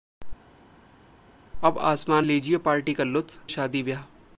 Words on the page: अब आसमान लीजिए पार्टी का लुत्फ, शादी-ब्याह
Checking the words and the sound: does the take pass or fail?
pass